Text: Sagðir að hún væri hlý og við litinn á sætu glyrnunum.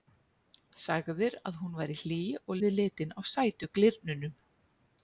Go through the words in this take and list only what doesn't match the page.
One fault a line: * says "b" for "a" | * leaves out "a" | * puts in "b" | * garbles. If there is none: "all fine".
all fine